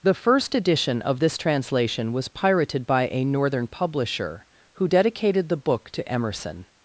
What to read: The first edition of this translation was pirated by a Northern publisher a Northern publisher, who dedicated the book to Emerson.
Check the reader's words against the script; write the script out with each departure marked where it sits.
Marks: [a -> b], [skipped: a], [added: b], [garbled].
The first edition of this translation was pirated by a Northern publisher [skipped: a Northern publisher,] who dedicated the book to Emerson.